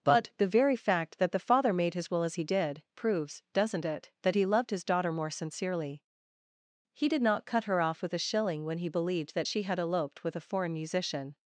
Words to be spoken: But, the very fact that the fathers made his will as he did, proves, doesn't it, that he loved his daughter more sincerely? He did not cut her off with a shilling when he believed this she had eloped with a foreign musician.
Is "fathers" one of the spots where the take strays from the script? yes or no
yes